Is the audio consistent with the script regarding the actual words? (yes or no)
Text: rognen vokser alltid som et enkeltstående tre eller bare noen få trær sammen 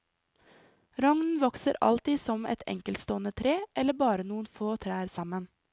yes